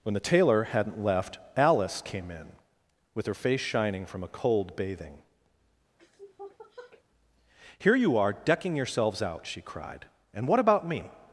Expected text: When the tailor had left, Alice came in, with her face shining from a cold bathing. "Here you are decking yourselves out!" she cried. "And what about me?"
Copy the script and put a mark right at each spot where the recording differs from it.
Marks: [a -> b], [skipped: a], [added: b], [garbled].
When the tailor [had -> hadn't] left, Alice came in, with her face shining from a cold bathing. "Here you are decking yourselves out!" she cried. "And what about me?"